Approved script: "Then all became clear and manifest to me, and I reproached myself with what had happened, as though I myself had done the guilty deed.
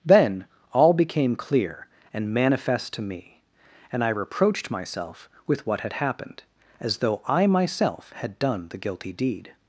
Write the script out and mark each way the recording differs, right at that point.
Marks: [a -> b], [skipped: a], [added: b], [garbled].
"Then all became clear and manifest to me, and I reproached myself with what had happened, as though I myself had done the guilty deed.